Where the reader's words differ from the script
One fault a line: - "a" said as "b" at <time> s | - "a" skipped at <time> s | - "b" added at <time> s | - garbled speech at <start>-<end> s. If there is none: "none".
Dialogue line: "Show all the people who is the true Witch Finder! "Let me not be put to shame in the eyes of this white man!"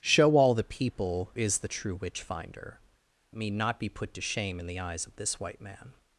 - "who" skipped at 1.3 s
- "Let" skipped at 2.8 s